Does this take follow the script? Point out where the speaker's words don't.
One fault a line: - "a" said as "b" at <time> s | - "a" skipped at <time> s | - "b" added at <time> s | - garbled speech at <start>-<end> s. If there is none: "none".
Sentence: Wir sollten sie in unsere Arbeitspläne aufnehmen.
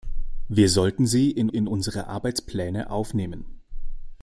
- "in" added at 1.5 s